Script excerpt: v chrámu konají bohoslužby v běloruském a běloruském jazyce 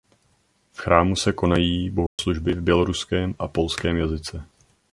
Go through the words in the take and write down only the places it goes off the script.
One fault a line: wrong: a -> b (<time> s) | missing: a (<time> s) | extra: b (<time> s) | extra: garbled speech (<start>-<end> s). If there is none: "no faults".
extra: se (1.1 s)
wrong: běloruském -> polském (3.5 s)